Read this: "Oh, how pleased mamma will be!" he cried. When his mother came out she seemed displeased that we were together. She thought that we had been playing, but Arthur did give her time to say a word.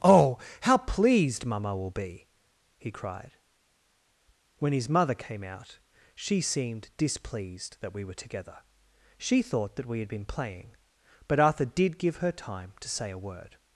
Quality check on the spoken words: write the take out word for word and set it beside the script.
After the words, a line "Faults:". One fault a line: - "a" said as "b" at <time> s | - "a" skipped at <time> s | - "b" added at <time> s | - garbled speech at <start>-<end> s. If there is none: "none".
"Oh, how pleased mamma will be!" he cried. When his mother came out she seemed displeased that we were together. She thought that we had been playing, but Arthur did give her time to say a word.
Faults:
none